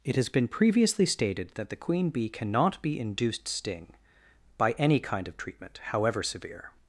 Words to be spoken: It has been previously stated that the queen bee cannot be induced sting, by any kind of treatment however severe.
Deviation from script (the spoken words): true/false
false